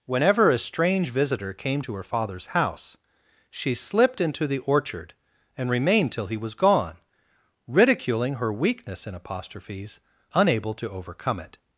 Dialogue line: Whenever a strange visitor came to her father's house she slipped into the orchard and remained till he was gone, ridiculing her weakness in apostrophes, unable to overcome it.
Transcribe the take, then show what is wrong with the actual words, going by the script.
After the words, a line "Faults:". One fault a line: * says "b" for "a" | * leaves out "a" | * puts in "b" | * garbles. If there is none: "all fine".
Whenever a strange visitor came to her father's house she slipped into the orchard and remained till he was gone, ridiculing her weakness in apostrophes, unable to overcome it.
Faults:
all fine